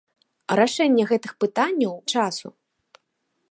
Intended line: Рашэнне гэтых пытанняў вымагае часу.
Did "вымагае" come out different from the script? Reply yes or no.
yes